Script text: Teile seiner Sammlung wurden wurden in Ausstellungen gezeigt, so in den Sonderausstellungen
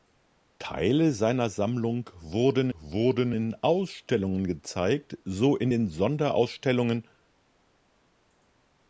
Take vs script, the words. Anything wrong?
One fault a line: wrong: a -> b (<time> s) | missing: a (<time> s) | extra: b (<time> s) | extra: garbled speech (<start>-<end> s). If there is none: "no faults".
no faults